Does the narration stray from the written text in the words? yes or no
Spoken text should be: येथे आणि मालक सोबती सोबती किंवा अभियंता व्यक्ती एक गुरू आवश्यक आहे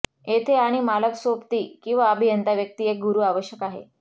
yes